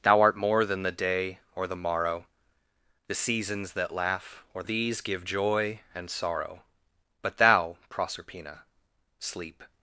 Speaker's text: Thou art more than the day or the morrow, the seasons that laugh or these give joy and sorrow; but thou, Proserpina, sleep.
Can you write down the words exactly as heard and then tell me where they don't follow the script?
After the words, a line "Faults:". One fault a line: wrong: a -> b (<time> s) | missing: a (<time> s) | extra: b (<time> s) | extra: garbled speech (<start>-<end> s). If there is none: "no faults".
Thou art more than the day or the morrow, the seasons that laugh or these give joy and sorrow; but thou, Proserpina, sleep.
Faults:
no faults